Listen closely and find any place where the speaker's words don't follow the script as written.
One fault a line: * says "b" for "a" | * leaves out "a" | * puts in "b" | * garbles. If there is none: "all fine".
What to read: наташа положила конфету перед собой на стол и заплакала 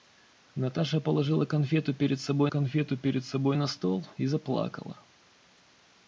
* puts in "конфету перед собой"